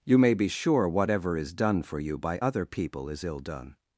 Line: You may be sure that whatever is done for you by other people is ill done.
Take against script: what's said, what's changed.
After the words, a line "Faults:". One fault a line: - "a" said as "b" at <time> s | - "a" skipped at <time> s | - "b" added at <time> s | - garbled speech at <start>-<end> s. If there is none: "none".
You may be sure whatever is done for you by other people is ill done.
Faults:
- "that" skipped at 0.9 s